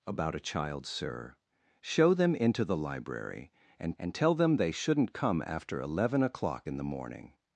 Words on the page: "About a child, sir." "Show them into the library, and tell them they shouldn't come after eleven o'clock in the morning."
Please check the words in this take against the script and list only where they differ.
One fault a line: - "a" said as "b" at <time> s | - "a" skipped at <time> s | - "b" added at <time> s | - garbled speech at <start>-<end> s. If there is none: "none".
- "and" added at 4.0 s